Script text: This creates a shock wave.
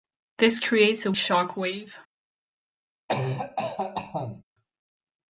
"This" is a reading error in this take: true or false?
false